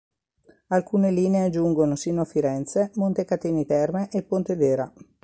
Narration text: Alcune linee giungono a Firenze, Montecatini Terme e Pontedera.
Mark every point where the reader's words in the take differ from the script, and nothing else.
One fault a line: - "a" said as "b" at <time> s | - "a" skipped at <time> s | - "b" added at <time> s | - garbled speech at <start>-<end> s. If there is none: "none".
- "sino" added at 1.9 s